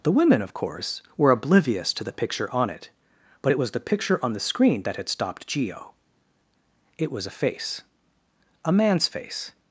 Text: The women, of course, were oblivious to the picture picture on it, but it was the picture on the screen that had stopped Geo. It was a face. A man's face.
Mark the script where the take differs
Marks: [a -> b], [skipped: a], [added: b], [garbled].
The women, of course, were oblivious to the picture [skipped: picture] on it, but it was the picture on the screen that had stopped Geo. It was a face. A man's face.